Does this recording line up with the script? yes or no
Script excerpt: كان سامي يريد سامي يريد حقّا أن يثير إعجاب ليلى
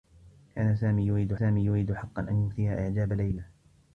yes